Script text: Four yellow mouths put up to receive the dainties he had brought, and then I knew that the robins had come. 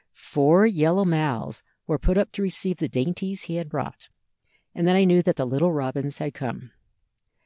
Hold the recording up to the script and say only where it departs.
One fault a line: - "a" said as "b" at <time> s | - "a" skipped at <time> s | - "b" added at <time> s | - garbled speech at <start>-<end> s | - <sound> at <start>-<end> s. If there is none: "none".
- "were" added at 1.9 s
- "little" added at 5.4 s